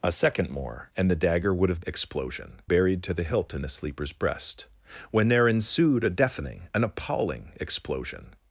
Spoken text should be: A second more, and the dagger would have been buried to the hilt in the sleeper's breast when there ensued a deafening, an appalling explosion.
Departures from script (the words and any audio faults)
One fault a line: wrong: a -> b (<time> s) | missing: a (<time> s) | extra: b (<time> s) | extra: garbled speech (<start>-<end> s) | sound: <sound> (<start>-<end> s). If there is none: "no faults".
wrong: been -> explosion (1.8 s)